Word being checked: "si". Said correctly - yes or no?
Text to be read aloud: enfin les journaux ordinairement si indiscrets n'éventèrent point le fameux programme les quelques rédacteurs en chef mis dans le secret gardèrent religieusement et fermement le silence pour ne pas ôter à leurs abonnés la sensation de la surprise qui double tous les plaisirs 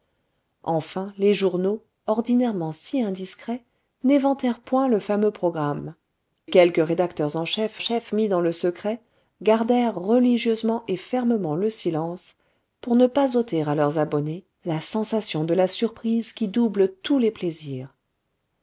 yes